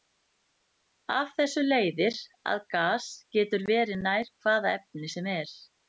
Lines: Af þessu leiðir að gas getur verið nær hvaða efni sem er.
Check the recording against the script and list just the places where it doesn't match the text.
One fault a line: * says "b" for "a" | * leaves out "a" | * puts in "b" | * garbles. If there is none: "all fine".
all fine